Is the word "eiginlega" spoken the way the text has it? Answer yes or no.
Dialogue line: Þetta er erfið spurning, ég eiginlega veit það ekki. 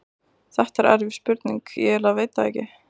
yes